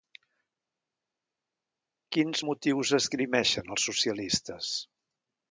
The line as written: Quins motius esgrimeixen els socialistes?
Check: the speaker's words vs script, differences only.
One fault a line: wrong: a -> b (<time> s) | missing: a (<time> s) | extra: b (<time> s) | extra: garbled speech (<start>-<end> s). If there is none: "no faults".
no faults